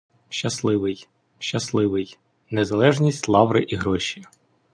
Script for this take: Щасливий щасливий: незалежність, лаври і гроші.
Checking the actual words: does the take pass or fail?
pass